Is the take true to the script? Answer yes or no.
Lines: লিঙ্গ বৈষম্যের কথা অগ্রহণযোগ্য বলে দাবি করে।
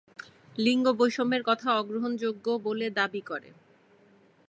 yes